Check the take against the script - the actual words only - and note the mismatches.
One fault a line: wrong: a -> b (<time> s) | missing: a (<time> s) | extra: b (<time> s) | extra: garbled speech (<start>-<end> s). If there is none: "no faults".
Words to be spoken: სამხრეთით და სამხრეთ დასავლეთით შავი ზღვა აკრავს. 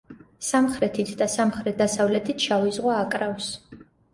no faults